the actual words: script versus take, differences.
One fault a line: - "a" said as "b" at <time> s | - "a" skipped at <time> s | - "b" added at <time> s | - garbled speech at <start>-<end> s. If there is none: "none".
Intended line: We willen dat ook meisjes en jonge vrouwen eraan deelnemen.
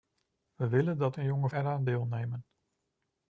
- "ook meisjes" skipped at 1.2 s
- "vrouwen" skipped at 1.5 s